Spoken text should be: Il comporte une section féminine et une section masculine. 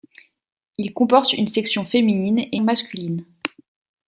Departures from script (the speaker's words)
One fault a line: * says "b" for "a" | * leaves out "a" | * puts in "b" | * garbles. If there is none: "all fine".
* leaves out "une section"